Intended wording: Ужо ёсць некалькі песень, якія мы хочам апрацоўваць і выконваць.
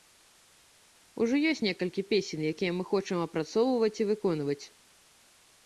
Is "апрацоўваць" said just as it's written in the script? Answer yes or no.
yes